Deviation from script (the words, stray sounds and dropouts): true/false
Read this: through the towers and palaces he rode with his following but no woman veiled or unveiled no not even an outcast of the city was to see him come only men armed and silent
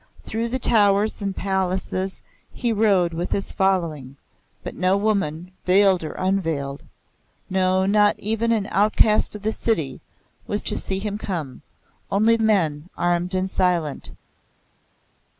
false